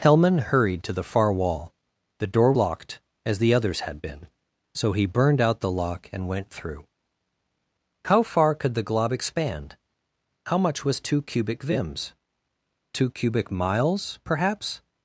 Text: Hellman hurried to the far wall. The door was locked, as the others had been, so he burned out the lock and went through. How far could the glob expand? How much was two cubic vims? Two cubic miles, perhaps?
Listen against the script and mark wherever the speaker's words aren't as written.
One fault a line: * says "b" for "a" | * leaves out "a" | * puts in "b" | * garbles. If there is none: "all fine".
* leaves out "was"